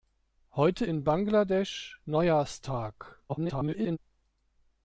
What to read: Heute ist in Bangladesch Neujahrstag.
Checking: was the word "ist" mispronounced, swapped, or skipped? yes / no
yes